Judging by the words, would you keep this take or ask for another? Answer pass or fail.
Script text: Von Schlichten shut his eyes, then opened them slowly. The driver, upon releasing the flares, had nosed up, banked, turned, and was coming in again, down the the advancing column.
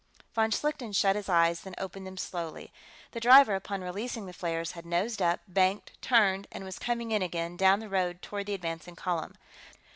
fail